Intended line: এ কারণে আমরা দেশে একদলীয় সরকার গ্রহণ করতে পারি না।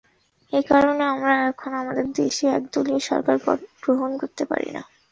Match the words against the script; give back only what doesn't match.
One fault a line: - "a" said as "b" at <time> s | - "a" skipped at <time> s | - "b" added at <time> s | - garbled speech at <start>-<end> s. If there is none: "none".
- "এখন আমাদের" added at 1.5 s